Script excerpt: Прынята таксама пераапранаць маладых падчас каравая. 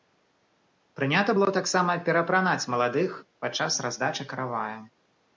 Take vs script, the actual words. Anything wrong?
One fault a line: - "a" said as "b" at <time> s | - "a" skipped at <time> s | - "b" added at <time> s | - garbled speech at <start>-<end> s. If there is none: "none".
- "было" added at 1.4 s
- "раздачы" added at 3.9 s